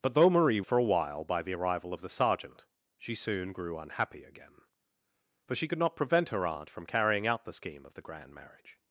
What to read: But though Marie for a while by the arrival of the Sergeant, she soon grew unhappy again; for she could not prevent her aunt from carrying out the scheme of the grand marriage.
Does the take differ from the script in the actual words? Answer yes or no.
no